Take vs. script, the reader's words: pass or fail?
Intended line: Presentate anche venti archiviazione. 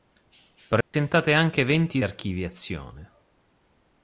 pass